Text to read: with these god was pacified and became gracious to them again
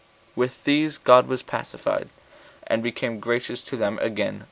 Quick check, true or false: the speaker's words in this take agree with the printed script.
true